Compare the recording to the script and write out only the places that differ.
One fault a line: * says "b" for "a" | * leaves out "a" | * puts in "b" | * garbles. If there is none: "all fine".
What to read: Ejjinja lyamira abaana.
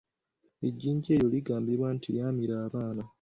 * puts in "eryo ligambibwa nti"